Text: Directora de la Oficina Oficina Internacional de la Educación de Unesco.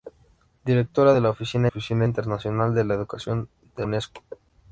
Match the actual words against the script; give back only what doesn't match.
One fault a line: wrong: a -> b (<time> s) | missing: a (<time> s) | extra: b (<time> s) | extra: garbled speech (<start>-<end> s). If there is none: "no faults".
no faults